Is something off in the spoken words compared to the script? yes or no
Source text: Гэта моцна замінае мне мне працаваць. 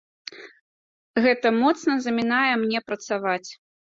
yes